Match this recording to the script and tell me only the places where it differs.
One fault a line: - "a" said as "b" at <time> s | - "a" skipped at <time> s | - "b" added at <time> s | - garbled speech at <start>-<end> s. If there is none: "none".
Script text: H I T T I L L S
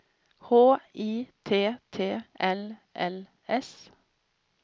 - "I" skipped at 2.2 s